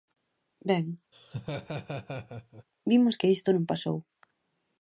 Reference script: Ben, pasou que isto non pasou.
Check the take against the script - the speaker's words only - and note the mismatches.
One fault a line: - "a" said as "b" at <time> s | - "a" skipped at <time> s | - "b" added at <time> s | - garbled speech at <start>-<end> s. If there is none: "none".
- "pasou" said as "vimos" at 2.9 s